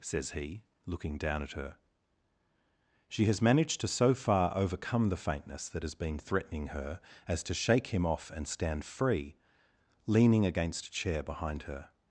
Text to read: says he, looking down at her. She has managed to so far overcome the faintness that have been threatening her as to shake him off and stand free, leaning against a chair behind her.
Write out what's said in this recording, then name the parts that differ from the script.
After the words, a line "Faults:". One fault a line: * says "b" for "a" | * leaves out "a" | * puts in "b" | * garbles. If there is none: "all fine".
says he, looking down at her. She has managed to so far overcome the faintness that has been threatening her as to shake him off and stand free, leaning against a chair behind her.
Faults:
* says "has" for "have"